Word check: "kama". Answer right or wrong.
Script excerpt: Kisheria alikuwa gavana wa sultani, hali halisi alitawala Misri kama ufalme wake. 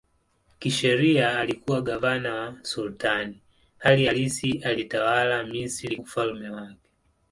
wrong